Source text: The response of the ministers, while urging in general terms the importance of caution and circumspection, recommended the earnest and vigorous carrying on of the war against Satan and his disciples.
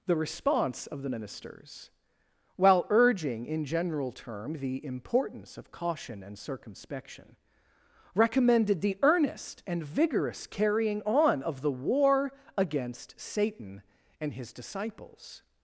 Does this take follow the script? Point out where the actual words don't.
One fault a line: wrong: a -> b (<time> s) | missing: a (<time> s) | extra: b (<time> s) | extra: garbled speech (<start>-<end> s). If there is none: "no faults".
wrong: terms -> term (4.1 s)